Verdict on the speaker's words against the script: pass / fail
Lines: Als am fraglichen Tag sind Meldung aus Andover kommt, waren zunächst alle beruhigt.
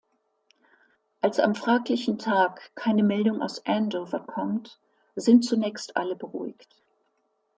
fail